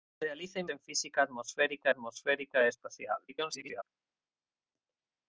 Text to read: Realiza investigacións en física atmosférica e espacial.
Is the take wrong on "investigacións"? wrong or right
wrong